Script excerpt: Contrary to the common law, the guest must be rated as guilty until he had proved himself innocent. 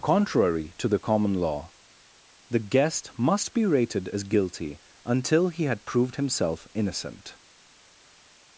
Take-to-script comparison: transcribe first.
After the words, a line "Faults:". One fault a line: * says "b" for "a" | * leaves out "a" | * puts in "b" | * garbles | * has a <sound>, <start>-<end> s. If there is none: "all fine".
Contrary to the common law, the guest must be rated as guilty until he had proved himself innocent.
Faults:
all fine